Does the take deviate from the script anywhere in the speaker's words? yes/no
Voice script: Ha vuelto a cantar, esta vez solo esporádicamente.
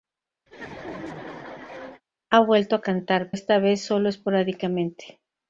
no